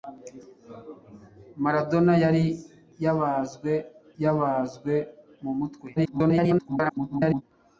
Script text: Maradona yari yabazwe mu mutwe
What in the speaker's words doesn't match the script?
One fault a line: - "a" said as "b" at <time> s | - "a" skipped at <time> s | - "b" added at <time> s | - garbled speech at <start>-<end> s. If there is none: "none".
- "yabazwe" added at 4.2 s
- garbled speech at 6.0-7.4 s